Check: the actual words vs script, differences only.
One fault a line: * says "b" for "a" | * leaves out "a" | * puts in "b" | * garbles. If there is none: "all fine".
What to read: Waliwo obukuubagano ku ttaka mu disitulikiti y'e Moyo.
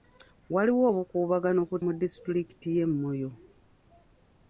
* leaves out "ttaka"